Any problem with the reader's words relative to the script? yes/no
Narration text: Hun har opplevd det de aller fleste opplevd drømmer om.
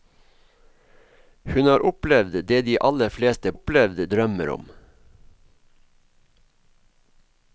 no